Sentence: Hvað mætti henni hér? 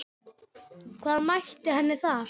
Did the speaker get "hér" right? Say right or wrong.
wrong